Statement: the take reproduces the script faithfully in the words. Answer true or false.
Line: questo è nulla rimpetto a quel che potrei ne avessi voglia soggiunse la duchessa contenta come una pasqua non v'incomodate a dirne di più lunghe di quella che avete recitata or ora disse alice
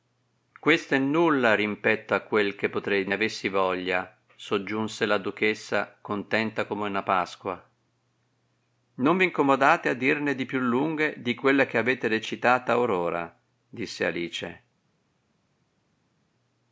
true